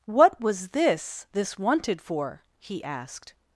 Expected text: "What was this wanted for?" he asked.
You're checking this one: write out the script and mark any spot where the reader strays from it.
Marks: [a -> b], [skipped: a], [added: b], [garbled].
"What was this [added: this] wanted for?" he asked.